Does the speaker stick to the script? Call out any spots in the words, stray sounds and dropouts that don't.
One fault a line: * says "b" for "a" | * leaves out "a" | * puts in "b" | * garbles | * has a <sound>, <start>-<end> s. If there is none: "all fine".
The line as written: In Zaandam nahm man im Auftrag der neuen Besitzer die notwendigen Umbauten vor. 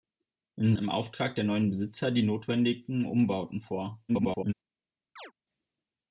* leaves out "Zaandam nahm man"
* garbles
* has a chirp, 5.2-5.3 s